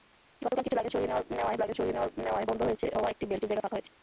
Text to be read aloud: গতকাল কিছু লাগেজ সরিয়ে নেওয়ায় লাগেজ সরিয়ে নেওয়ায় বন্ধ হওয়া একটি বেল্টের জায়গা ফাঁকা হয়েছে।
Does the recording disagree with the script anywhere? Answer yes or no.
no